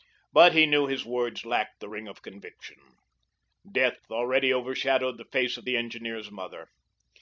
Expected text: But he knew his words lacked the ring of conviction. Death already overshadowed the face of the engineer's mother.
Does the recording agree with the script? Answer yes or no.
yes